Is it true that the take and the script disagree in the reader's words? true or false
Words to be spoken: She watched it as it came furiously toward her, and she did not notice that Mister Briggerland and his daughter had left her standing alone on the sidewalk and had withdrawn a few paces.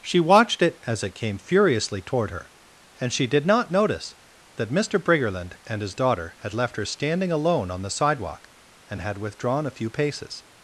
false